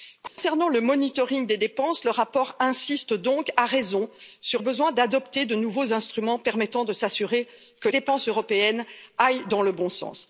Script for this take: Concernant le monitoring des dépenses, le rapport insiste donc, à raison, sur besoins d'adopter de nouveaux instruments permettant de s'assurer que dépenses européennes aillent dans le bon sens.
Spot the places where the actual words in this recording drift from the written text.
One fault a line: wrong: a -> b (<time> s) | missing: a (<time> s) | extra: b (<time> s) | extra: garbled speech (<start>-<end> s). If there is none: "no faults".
no faults